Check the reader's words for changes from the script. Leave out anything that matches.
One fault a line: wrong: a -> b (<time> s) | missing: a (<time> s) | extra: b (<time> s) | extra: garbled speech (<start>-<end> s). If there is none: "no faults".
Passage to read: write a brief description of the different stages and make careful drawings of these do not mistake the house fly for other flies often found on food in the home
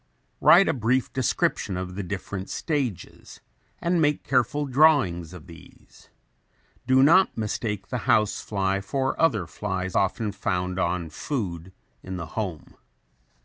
no faults